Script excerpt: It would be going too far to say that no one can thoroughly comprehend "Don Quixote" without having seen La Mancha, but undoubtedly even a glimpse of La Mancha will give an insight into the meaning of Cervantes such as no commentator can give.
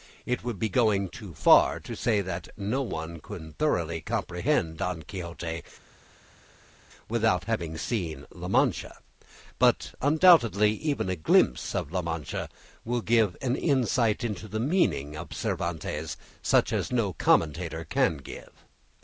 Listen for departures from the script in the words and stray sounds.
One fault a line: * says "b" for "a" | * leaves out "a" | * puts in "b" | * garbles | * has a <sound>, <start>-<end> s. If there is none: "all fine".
all fine